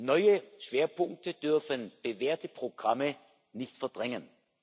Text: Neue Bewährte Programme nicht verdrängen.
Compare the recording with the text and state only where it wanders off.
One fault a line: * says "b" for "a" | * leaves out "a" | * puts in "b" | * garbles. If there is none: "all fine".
* puts in "Schwerpunkte dürfen"